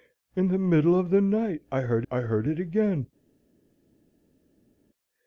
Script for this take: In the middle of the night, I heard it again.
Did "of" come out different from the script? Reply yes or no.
no